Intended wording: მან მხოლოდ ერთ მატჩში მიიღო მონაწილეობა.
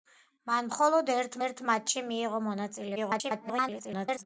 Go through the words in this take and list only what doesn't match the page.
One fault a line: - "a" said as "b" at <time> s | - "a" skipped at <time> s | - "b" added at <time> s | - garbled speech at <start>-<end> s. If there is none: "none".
- "ერთ" added at 1.4 s
- garbled speech at 3.0-4.3 s